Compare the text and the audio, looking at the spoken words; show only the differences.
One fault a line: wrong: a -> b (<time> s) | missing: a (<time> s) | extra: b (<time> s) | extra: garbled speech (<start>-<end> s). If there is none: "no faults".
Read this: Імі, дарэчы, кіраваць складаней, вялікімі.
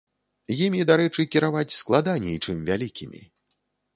extra: чым (2.4 s)